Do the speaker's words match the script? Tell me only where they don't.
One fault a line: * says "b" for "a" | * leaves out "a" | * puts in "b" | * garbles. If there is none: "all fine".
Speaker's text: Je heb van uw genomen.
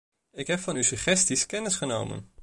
* says "Ik" for "Je"
* puts in "suggesties kennis"